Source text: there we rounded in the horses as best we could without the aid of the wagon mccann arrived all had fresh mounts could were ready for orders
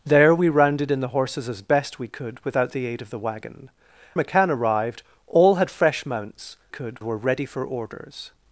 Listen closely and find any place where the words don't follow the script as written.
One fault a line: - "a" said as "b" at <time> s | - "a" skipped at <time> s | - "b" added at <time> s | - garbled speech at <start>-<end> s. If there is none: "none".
none